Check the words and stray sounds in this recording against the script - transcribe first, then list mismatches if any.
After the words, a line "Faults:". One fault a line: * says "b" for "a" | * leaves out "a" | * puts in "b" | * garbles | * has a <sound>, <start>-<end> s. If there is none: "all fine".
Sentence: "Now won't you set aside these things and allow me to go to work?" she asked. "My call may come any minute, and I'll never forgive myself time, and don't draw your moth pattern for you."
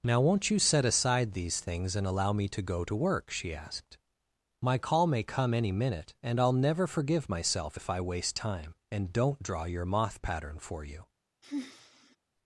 "Now won't you set aside these things and allow me to go to work?" she asked. "My call may come any minute, and I'll never forgive myself if I waste time, and don't draw your moth pattern for you."
Faults:
* puts in "if I waste"
* has a sigh, 11.4-12.2 s